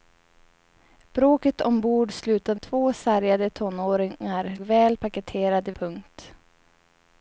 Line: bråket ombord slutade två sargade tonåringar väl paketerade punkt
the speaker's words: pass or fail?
pass